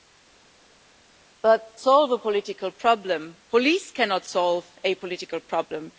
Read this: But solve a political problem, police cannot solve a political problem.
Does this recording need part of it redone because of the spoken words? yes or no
no